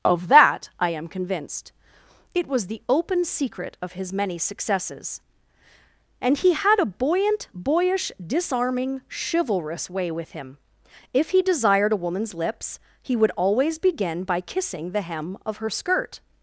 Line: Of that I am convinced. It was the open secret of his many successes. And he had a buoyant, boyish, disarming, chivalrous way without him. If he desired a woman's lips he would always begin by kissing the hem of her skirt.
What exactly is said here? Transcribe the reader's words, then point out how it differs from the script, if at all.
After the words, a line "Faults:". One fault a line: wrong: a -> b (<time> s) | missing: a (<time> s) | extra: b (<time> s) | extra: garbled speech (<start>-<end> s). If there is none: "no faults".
Of that I am convinced. It was the open secret of his many successes. And he had a buoyant, boyish, disarming, chivalrous way with him. If he desired a woman's lips he would always begin by kissing the hem of her skirt.
Faults:
wrong: without -> with (10.1 s)